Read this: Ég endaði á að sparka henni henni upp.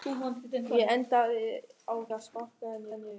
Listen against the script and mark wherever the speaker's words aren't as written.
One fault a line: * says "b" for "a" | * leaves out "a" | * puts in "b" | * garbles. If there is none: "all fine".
all fine